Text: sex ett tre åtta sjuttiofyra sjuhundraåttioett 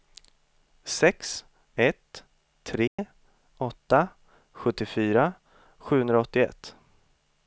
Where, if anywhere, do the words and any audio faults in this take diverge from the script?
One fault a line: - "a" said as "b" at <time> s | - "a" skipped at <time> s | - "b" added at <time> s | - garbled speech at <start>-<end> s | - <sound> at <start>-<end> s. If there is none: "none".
- dropout at 2.9-3.0 s